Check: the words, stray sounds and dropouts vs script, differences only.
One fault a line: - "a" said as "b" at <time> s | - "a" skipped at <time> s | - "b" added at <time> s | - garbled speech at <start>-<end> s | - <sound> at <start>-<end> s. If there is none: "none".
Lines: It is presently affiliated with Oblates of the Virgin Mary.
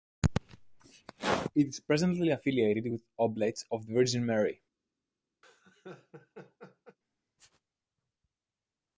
- laugh at 5.4-7.0 s